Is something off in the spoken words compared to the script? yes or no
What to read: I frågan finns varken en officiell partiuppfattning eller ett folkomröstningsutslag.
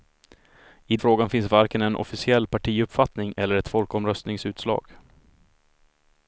no